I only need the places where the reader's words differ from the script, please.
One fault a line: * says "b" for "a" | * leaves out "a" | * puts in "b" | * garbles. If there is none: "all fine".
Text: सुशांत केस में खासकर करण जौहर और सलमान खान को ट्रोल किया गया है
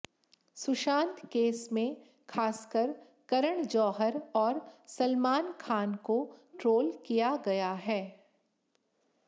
all fine